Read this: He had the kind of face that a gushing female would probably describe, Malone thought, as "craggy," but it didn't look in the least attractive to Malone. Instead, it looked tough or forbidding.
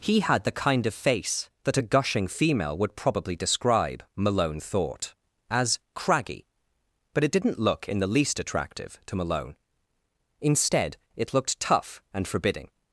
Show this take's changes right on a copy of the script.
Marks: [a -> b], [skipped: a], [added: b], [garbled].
He had the kind of face that a gushing female would probably describe, Malone thought, as "craggy," but it didn't look in the least attractive to Malone. Instead, it looked tough [or -> and] forbidding.